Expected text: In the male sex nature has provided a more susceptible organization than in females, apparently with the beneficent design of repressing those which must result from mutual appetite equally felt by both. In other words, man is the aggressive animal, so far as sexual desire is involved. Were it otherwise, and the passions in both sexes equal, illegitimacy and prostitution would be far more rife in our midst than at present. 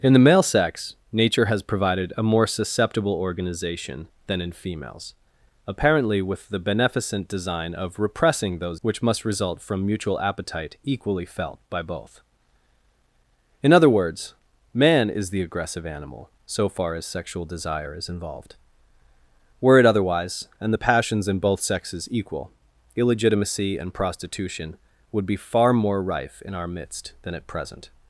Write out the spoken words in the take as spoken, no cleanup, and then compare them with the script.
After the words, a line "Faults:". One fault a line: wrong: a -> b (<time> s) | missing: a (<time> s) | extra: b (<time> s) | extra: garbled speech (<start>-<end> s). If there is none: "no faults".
In the male sex nature has provided a more susceptible organization than in females, apparently with the beneficent design of repressing those which must result from mutual appetite equally felt by both. In other words, man is the aggressive animal, so far as sexual desire is involved. Were it otherwise, and the passions in both sexes equal, illegitimacy and prostitution would be far more rife in our midst than at present.
Faults:
no faults